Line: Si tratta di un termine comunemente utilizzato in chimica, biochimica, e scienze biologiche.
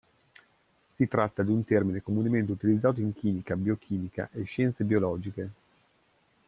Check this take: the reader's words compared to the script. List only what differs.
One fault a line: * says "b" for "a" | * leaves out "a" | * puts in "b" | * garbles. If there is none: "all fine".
all fine